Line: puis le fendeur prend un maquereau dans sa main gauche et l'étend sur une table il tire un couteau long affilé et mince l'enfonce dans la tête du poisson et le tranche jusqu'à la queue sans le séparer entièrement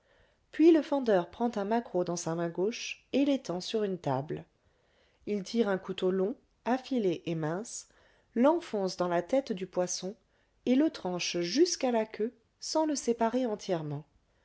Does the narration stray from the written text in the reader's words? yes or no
no